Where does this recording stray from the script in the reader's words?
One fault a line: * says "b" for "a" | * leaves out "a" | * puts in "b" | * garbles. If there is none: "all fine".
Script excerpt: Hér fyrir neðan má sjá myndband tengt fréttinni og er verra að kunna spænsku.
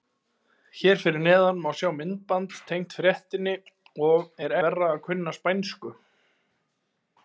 all fine